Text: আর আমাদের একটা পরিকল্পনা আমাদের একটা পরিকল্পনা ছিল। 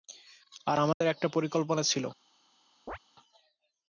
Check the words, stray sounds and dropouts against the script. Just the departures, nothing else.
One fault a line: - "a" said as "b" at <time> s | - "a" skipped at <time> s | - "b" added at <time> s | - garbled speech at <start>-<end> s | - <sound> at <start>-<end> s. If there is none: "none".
- dropout at 0.9-1.0 s
- "আমাদের একটা পরিকল্পনা" skipped at 1.8 s
- chirp at 2.9-3.0 s